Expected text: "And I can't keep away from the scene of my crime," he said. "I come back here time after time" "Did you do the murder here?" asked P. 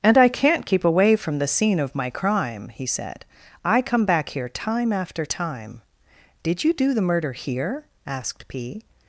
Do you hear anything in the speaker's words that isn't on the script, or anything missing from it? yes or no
no